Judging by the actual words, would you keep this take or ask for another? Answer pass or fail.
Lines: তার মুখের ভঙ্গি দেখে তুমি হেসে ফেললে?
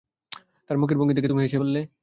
pass